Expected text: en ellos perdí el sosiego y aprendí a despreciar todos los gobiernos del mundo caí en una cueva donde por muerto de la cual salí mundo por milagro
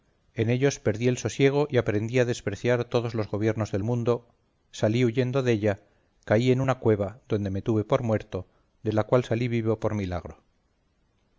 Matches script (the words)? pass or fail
fail